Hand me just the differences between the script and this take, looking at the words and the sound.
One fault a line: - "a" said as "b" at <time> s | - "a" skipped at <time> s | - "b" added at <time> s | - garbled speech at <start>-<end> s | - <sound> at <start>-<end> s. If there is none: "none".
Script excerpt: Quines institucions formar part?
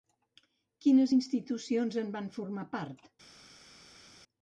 - "en van" added at 2.0 s